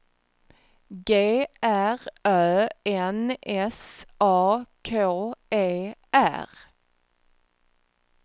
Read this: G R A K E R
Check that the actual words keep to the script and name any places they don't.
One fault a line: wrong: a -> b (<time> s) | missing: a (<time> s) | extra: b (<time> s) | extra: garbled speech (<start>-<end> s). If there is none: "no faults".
extra: Ö N S (2.2 s)